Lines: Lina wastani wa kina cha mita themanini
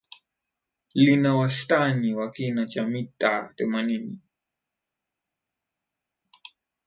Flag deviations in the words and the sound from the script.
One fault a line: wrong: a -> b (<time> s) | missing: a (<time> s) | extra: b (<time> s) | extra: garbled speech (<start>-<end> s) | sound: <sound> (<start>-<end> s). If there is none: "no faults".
no faults